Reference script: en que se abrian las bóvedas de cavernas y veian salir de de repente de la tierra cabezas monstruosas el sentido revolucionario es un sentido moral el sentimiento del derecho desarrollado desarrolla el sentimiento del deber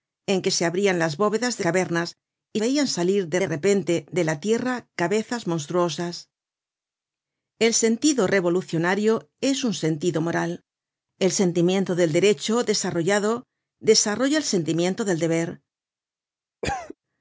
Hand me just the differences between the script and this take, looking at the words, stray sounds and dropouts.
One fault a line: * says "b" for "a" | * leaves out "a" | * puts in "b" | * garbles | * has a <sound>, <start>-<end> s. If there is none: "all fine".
* has a cough, 16.6-17.0 s